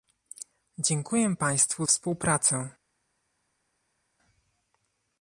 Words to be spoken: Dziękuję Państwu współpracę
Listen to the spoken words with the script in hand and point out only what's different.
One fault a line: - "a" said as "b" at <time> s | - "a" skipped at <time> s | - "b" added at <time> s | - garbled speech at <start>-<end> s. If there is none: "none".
none